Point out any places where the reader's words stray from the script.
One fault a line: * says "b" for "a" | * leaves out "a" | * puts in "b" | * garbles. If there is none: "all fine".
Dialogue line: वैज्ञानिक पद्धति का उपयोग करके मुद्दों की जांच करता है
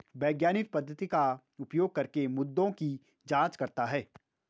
all fine